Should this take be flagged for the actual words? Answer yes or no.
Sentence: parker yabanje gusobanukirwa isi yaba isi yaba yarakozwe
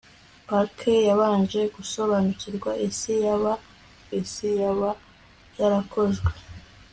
no